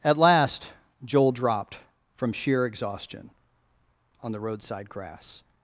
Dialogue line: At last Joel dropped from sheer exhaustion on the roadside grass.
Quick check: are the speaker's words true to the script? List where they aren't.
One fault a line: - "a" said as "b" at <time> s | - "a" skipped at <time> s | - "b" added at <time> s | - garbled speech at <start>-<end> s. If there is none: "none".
none